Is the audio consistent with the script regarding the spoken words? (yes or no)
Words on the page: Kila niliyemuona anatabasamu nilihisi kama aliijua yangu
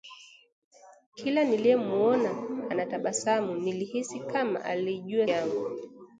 yes